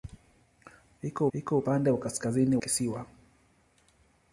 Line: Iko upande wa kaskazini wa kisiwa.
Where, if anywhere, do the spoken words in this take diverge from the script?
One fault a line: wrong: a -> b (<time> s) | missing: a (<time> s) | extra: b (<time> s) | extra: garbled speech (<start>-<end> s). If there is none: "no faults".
extra: iko (1.3 s)
missing: wa (2.6 s)